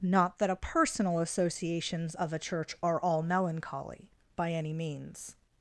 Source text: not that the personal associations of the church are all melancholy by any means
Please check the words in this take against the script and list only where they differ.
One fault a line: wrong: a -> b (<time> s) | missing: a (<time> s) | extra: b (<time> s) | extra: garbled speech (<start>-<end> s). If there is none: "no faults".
wrong: the -> a (0.5 s)
wrong: the -> a (2.3 s)